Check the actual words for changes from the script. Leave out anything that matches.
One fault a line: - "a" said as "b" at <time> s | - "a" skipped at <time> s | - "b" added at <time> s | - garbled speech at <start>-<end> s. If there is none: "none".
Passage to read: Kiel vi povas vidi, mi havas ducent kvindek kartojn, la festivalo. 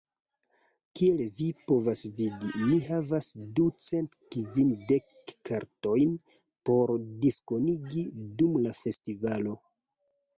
- "por diskonigi dum" added at 6.7 s